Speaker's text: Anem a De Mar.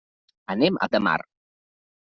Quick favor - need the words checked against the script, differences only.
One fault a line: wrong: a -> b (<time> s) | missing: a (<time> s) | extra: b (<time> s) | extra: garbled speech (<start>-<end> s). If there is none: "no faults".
no faults